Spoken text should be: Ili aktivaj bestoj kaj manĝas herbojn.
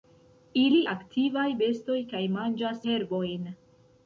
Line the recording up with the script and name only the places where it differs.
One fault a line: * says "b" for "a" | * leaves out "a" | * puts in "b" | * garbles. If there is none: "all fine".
all fine